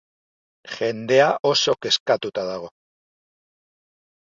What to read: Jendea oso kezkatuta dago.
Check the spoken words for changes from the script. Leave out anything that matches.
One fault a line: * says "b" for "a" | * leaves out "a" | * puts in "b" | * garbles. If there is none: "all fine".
all fine